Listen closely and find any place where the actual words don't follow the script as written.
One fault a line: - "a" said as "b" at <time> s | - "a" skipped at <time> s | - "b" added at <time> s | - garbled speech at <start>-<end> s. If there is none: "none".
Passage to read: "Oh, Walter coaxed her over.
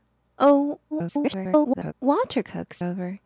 - garbled speech at 0.9-1.9 s
- "her" skipped at 2.8 s